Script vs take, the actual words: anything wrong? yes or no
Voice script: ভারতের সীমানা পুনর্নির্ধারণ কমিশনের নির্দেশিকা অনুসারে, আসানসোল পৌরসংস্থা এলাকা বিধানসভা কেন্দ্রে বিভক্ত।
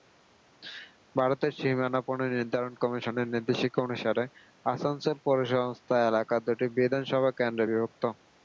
yes